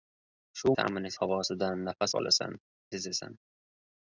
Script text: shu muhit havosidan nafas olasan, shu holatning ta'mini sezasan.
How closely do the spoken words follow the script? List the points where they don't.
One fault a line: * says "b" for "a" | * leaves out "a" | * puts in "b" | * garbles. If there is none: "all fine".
* says "ta'mini" for "muhit"
* leaves out "shu holatning ta'mini"